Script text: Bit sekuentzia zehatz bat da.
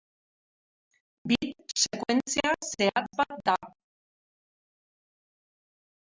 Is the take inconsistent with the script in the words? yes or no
no